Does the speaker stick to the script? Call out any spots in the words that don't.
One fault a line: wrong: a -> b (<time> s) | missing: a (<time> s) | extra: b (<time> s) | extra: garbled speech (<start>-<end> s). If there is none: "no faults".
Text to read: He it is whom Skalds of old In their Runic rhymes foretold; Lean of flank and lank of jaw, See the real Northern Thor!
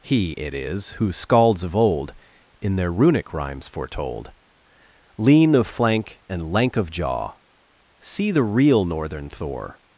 wrong: whom -> who (0.9 s)